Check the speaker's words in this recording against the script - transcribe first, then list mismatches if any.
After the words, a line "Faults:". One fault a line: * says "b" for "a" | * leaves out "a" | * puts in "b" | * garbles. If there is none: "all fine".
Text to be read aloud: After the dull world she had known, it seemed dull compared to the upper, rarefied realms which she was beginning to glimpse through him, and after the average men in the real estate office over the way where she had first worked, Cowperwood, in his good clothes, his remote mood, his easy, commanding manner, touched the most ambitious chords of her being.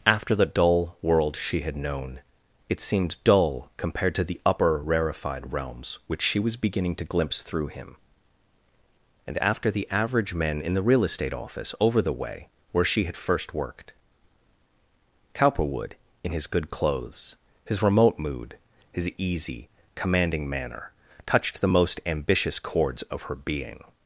After the dull world she had known, it seemed dull compared to the upper, rarefied realms which she was beginning to glimpse through him, and after the average men in the real estate office over the way where she had first worked, Cowperwood, in his good clothes, his remote mood, his easy, commanding manner, touched the most ambitious chords of her being.
Faults:
all fine